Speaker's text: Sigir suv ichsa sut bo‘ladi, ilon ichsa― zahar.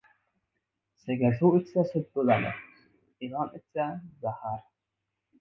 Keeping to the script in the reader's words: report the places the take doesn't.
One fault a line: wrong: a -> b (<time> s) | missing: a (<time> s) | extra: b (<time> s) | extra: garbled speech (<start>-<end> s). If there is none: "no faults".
no faults